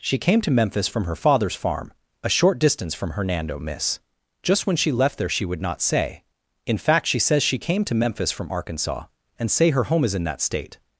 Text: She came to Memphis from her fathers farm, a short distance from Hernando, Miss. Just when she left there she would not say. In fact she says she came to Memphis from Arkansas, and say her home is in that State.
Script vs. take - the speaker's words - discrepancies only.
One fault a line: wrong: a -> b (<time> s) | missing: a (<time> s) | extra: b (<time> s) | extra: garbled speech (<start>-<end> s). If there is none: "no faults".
no faults